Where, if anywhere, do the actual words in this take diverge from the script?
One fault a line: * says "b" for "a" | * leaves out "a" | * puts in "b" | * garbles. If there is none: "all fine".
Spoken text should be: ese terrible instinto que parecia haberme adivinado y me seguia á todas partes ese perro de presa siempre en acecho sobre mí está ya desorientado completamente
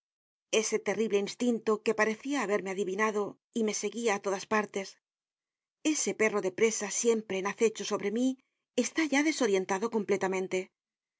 all fine